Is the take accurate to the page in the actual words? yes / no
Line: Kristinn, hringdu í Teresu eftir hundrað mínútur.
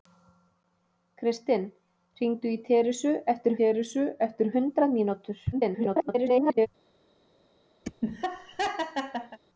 no